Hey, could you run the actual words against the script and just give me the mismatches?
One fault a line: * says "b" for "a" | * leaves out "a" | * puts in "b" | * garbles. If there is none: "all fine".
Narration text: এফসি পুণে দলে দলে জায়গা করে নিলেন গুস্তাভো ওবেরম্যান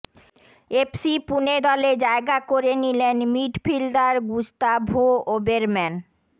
* leaves out "দলে"
* puts in "মিডফিল্ডার"